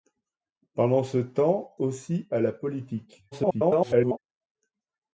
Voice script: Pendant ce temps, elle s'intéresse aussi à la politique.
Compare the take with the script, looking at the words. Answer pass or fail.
fail